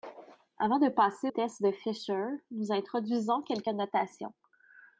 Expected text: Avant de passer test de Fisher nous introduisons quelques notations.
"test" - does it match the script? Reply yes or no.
yes